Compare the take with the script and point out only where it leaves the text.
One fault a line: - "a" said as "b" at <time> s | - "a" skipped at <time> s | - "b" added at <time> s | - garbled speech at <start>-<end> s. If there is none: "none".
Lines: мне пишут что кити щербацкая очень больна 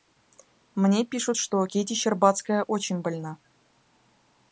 none